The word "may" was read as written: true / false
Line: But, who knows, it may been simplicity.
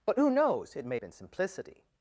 true